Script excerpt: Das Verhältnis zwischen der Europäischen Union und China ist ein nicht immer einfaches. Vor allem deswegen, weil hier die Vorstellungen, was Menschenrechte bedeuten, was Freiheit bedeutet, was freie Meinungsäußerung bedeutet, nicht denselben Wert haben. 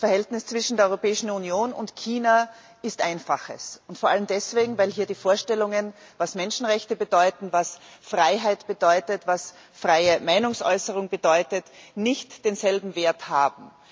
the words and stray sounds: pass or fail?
fail